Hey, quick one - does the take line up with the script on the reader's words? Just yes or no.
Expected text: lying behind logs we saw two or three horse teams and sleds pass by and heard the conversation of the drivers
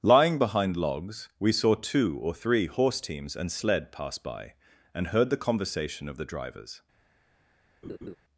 no